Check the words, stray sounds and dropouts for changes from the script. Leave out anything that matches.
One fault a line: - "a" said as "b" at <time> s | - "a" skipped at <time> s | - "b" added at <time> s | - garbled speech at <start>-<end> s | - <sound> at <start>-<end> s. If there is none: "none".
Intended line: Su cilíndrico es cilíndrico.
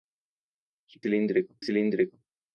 none